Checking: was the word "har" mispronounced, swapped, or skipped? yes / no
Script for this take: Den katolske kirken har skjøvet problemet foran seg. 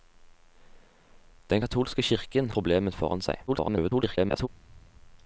yes